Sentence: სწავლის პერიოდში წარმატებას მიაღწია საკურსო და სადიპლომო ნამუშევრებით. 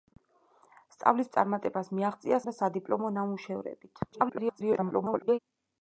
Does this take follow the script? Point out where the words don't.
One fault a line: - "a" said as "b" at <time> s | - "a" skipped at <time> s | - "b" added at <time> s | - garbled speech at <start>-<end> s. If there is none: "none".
- "პერიოდში" skipped at 1.3 s
- "საკურსო" skipped at 2.4 s
- garbled speech at 4.1-5.4 s